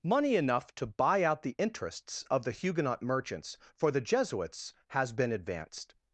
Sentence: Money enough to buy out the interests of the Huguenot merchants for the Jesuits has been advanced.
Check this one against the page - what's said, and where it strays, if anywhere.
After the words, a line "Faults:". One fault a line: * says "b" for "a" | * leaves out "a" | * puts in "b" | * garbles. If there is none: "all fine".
Money enough to buy out the interests of the Huguenot merchants for the Jesuits has been advanced.
Faults:
all fine